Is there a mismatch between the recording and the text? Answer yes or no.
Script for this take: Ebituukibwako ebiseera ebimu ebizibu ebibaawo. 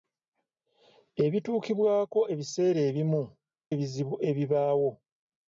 no